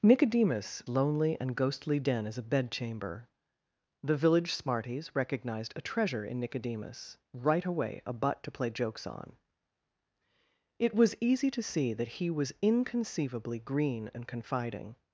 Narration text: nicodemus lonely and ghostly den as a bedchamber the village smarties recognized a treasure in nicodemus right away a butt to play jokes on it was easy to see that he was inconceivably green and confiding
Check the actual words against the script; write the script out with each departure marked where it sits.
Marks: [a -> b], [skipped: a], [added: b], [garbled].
nicodemus lonely and ghostly den as a bedchamber the village smarties recognized a treasure in nicodemus right away a butt to play jokes on it was easy to see that he was inconceivably green and confiding